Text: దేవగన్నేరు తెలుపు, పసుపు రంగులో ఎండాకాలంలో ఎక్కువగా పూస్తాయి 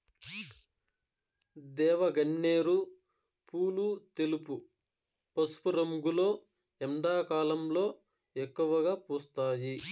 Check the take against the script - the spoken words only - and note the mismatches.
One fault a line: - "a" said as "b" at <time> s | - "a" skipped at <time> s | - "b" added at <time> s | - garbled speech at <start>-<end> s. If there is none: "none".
- "పూలు" added at 3.5 s